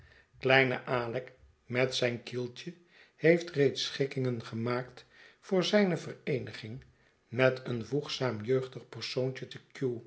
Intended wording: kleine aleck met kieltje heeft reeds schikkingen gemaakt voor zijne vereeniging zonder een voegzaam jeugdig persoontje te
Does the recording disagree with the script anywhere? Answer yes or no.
yes